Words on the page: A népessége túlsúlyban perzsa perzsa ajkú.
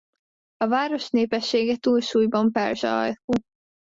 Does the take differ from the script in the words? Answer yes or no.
yes